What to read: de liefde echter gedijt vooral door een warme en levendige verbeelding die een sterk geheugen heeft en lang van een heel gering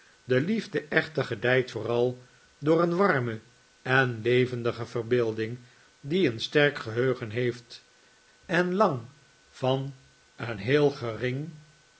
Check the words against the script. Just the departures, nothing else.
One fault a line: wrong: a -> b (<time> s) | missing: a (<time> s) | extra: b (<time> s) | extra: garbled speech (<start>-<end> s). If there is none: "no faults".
no faults